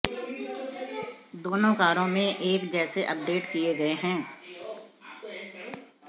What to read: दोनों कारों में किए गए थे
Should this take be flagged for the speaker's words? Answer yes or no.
yes